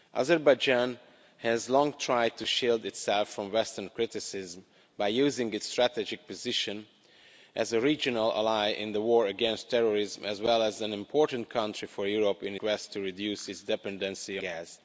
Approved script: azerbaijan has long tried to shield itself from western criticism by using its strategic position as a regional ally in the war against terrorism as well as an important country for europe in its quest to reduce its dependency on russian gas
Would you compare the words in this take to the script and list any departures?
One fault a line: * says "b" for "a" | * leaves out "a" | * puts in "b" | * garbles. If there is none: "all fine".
* leaves out "its"
* leaves out "on russian"